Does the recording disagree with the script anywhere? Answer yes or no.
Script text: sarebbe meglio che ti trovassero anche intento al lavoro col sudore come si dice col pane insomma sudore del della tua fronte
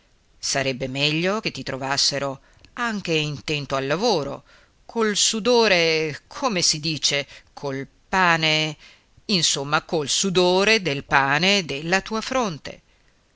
yes